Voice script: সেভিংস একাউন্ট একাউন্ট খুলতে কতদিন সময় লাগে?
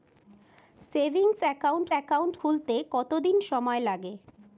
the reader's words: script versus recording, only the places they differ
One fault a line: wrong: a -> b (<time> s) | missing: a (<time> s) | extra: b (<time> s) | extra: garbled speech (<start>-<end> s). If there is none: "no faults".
no faults